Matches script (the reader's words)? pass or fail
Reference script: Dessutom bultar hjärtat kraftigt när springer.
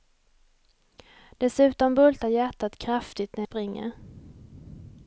pass